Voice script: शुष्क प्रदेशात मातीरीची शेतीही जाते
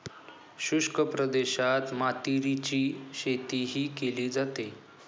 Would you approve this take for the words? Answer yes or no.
no